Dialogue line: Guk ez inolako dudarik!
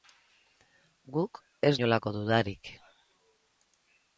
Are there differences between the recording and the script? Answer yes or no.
no